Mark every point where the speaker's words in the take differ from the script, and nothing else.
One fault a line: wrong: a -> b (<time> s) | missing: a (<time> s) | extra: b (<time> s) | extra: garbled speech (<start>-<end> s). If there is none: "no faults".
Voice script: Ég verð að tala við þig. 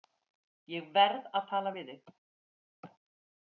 no faults